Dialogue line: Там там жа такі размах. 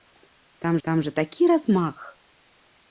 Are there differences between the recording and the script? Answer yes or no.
no